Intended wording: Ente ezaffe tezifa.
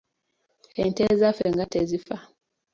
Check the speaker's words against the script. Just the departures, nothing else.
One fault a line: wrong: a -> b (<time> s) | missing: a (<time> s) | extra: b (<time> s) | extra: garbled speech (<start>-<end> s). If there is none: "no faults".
extra: nga (1.5 s)